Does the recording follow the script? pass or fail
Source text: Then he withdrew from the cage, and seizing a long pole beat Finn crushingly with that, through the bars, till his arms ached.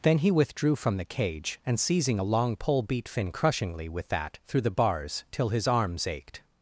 pass